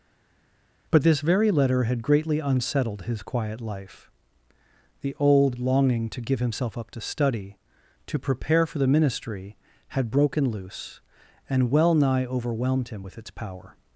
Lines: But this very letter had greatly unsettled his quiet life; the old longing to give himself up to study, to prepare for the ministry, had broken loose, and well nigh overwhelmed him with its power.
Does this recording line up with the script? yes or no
yes